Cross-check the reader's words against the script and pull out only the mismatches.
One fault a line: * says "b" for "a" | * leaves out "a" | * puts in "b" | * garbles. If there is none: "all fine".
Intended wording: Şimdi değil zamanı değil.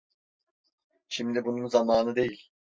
* says "bunun" for "değil"